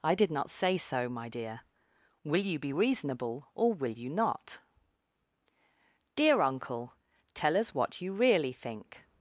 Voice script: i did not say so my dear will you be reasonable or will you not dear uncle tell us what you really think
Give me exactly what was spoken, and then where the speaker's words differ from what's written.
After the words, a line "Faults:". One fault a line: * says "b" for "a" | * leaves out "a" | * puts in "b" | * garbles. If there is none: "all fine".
i did not say so my dear will you be reasonable or will you not dear uncle tell us what you really think
Faults:
all fine